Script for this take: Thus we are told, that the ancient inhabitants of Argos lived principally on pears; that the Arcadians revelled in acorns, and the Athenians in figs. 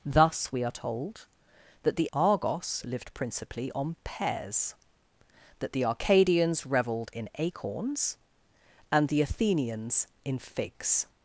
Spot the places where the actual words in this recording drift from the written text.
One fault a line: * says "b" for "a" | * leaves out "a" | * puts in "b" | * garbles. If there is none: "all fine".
* leaves out "ancient inhabitants of"